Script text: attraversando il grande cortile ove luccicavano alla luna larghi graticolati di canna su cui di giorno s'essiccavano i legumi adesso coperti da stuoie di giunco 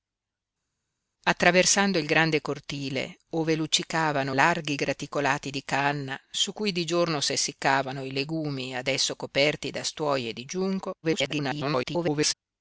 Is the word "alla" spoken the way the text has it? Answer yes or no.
no